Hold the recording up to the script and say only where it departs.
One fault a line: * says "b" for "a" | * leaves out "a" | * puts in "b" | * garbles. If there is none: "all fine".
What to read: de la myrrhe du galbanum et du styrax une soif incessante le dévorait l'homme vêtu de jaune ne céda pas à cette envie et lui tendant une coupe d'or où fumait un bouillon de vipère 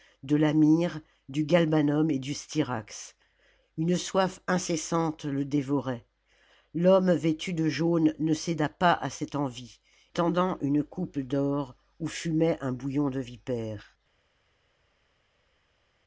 * leaves out "et lui"